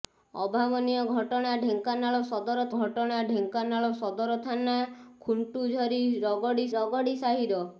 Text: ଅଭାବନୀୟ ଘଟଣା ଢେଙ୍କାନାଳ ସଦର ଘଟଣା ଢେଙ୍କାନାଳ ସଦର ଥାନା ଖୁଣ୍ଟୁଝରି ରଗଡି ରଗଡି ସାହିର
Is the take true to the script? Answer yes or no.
yes